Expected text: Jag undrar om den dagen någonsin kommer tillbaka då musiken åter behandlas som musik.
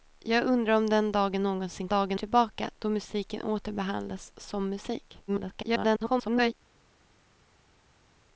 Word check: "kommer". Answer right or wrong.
wrong